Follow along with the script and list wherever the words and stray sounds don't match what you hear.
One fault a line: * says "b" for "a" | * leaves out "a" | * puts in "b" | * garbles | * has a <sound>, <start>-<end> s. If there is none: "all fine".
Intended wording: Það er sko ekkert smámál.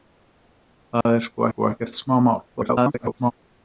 * has a dropout, 1.0-1.1 s
* puts in "sko"
* garbles